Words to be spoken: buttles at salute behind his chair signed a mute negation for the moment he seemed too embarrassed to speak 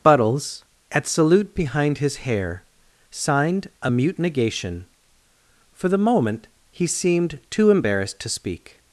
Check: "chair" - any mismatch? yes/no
yes